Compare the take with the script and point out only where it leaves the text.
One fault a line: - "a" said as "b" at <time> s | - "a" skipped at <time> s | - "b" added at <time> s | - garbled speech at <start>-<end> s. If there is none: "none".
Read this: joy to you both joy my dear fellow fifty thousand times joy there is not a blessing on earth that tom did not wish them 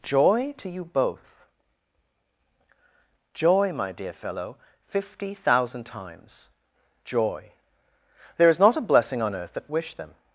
- "tom did not" skipped at 9.7 s